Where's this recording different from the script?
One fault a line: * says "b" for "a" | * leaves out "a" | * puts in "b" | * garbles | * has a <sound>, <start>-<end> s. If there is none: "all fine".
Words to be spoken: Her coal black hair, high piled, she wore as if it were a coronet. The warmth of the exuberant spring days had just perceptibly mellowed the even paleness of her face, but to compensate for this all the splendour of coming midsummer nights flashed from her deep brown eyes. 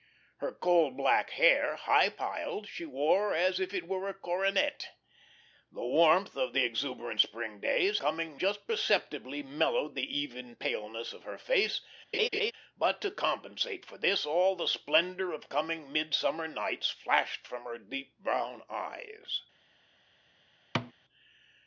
* says "coming" for "had"
* has a laugh, 12.1-12.5 s
* has a thud, 20.7-20.9 s